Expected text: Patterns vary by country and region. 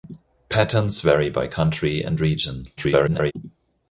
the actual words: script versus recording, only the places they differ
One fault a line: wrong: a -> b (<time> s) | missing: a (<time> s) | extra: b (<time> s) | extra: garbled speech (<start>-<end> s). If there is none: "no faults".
extra: garbled speech (2.8-3.3 s)